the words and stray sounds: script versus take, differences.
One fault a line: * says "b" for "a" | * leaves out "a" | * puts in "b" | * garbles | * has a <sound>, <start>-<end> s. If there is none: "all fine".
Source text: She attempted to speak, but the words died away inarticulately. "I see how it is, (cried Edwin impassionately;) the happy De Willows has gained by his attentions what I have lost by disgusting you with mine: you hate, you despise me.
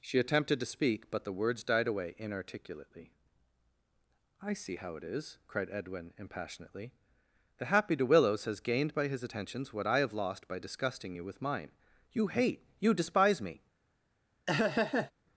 * has a laugh, 14.5-15.1 s